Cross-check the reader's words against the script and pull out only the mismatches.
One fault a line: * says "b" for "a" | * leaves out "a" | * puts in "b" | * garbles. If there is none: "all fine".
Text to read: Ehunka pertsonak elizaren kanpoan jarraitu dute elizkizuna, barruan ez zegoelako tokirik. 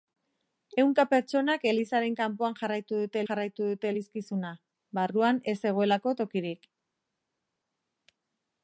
* puts in "jarraitu dute"